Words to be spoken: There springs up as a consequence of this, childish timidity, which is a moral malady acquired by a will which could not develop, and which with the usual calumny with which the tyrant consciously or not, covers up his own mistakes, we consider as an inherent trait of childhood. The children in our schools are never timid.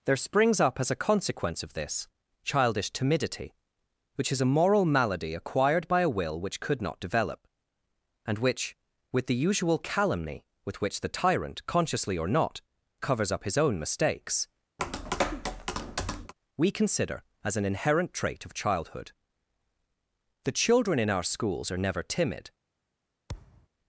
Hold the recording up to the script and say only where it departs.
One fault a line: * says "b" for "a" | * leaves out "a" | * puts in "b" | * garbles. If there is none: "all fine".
all fine